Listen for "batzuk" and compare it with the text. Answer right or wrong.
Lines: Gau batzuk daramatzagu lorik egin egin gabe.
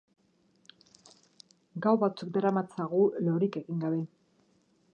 right